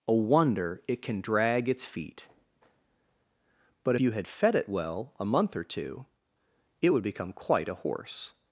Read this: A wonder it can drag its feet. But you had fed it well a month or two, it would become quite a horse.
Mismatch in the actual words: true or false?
false